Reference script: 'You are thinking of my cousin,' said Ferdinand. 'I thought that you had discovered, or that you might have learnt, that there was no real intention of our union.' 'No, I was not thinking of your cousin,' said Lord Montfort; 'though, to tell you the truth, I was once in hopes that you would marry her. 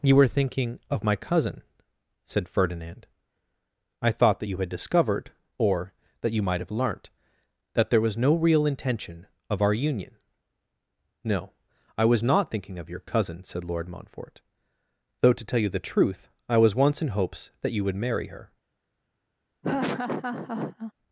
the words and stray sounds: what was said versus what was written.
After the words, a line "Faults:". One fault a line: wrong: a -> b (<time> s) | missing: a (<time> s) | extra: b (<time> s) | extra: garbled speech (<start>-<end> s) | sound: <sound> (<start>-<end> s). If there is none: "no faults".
'You were thinking of my cousin,' said Ferdinand. 'I thought that you had discovered, or that you might have learnt, that there was no real intention of our union.' 'No, I was not thinking of your cousin,' said Lord Montfort; 'though, to tell you the truth, I was once in hopes that you would marry her.
Faults:
wrong: are -> were (0.1 s)
sound: laugh (19.6-20.9 s)